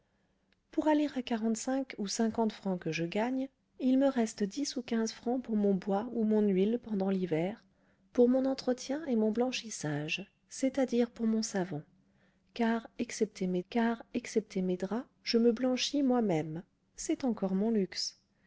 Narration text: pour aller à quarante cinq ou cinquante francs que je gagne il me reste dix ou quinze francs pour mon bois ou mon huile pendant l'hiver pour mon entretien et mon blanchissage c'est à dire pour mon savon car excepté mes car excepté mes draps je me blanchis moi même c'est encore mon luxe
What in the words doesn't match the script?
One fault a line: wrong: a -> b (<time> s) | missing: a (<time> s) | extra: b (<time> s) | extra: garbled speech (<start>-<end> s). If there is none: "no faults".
no faults